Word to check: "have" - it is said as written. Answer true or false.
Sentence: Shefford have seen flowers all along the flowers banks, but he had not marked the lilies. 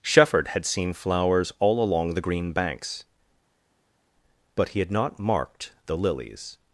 false